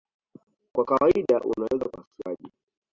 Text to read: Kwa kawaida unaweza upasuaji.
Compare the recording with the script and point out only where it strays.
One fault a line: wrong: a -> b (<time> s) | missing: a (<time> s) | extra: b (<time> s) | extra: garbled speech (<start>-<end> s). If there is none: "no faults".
no faults